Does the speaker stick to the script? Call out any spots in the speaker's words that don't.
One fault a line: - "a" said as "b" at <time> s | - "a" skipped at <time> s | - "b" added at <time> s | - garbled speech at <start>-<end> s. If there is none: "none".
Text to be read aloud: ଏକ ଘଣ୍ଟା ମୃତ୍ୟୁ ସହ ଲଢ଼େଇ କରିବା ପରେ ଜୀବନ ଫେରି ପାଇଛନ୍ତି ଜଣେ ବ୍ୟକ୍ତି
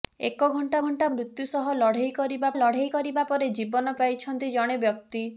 - "ଘଣ୍ଟା" added at 0.8 s
- "ଲଢ଼େଇ କରିବା" added at 2.6 s
- "ଫେରି" skipped at 4.0 s